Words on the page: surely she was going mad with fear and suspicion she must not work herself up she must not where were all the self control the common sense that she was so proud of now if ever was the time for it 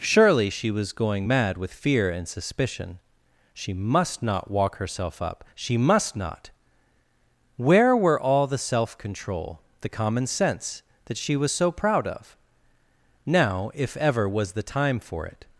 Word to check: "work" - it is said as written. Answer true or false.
false